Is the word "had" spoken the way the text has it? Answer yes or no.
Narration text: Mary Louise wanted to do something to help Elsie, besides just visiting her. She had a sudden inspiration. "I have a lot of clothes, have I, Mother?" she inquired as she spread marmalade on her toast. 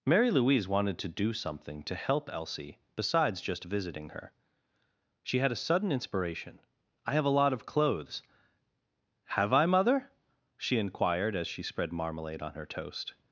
yes